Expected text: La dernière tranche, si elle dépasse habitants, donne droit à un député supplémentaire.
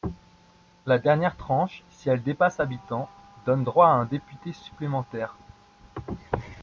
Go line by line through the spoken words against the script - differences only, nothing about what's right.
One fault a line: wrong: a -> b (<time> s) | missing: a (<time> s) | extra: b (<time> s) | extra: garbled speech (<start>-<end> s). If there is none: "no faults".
no faults